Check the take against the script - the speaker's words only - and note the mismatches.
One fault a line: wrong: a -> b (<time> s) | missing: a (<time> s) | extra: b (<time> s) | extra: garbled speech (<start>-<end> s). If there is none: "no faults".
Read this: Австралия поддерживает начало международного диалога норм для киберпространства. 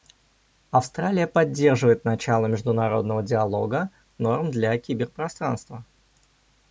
no faults